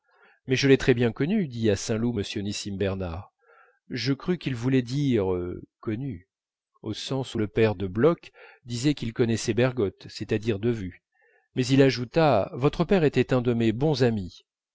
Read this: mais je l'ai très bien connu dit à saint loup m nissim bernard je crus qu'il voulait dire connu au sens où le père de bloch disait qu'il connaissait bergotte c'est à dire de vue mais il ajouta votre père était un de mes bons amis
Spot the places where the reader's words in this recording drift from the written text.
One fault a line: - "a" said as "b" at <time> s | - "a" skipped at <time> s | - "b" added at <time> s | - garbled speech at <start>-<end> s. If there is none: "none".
none